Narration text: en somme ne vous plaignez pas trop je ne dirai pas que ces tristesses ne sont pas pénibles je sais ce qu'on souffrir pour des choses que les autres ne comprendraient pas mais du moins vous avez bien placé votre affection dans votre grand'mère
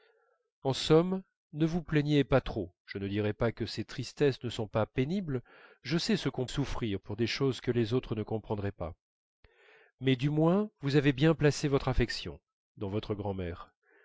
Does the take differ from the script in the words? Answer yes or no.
no